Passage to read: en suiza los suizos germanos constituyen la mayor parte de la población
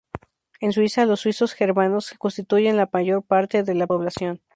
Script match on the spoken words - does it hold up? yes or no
yes